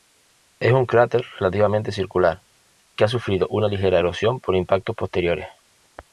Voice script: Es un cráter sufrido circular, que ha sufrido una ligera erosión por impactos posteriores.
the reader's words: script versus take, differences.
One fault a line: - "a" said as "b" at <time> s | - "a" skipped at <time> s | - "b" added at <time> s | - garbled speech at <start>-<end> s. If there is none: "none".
- "sufrido" said as "relativamente" at 1.4 s